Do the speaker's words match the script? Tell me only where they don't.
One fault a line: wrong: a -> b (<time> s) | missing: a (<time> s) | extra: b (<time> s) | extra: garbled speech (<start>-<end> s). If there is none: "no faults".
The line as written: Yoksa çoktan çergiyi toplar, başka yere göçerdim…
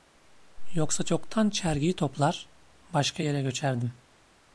no faults